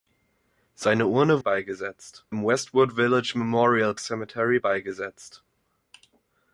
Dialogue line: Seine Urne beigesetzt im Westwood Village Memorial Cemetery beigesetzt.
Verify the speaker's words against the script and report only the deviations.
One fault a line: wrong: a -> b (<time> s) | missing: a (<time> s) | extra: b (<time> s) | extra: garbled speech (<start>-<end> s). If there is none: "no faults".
no faults